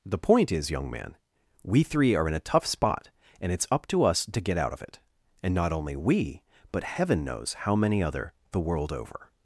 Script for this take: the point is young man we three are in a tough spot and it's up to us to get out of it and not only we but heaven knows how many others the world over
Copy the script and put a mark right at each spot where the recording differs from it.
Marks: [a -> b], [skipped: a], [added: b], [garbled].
the point is young man we three are in a tough spot and it's up to us to get out of it and not only we but heaven knows how many [others -> other] the world over